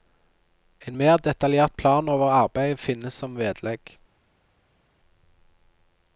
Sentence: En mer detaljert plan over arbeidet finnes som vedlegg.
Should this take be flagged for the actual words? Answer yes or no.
no